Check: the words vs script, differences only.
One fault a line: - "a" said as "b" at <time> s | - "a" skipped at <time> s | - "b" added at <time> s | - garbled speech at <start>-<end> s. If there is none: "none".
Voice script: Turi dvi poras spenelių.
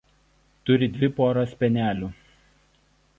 none